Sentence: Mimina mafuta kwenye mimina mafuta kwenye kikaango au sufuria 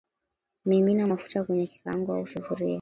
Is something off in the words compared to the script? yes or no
yes